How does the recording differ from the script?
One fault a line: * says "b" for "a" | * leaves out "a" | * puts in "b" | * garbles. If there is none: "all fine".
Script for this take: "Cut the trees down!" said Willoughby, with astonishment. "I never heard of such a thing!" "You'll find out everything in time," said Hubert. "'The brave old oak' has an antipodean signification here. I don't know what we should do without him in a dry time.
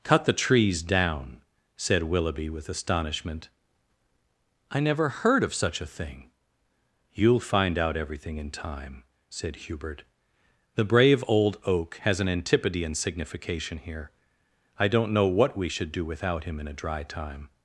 all fine